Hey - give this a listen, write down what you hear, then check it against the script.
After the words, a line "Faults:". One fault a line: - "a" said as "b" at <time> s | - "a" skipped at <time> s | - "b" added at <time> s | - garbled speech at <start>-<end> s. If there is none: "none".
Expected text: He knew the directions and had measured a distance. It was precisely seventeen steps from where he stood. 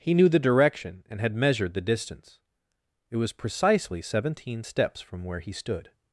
He knew the direction and had measured the distance. It was precisely seventeen steps from where he stood.
Faults:
- "directions" said as "direction" at 0.4 s
- "a" said as "the" at 1.8 s